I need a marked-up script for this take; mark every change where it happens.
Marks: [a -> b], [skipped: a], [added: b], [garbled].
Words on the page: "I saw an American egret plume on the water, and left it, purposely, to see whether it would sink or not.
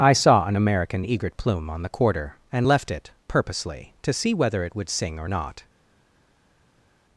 "I saw an American egret plume on the [water, -> quarter] and left it, purposely, to see whether it would [sink -> sing] or not.